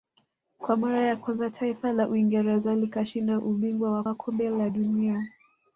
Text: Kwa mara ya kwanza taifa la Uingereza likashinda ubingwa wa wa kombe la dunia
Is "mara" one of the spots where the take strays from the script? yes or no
no